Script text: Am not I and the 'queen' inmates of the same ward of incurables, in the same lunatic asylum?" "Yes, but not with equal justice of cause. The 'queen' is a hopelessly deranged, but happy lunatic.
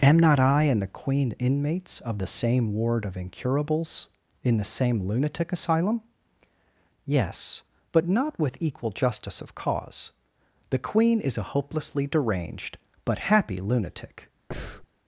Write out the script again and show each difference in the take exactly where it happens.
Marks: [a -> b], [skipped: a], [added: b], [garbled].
Am not I and the 'queen' inmates of the same ward of incurables, in the same lunatic asylum?" "Yes, but not with equal justice of cause. The 'queen' is a hopelessly deranged, but happy lunatic.